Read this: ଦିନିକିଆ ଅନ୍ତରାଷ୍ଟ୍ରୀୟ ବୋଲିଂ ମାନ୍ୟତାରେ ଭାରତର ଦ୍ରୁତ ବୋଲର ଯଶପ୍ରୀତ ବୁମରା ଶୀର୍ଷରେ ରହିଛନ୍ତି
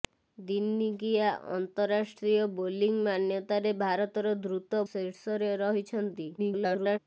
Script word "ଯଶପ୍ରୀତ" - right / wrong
wrong